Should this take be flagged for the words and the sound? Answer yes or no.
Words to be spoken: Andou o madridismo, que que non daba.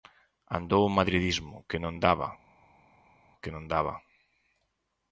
yes